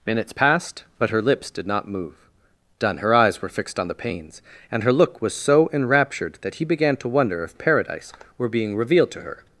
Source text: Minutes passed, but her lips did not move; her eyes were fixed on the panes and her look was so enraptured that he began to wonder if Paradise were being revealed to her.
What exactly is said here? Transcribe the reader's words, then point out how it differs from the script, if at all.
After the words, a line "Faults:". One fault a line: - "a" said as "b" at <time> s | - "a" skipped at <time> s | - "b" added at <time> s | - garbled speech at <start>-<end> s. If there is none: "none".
Minutes passed, but her lips did not move; done her eyes were fixed on the panes and her look was so enraptured that he began to wonder if Paradise were being revealed to her.
Faults:
- "done" added at 2.8 s